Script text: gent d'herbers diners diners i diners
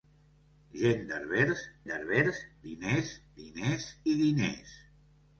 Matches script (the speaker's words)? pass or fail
fail